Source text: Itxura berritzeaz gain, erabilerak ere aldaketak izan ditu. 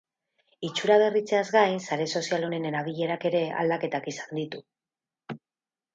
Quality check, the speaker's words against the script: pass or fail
fail